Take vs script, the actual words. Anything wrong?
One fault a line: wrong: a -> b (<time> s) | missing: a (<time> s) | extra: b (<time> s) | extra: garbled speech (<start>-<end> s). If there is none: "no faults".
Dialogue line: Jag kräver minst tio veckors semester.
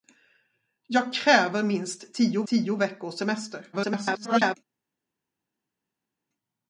extra: tio (2.5 s)
extra: garbled speech (3.7-4.6 s)